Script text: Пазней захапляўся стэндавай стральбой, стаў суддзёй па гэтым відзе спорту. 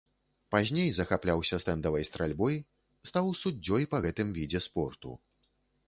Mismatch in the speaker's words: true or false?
false